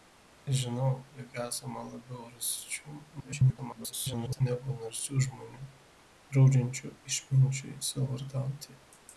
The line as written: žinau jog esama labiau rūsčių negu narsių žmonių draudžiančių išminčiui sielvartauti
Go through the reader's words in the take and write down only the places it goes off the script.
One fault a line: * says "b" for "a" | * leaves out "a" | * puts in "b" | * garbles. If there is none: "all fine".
* garbles